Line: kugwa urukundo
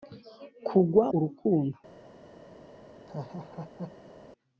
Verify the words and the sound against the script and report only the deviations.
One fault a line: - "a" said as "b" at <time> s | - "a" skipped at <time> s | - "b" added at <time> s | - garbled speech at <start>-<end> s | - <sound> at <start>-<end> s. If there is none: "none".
- laugh at 3.1-4.1 s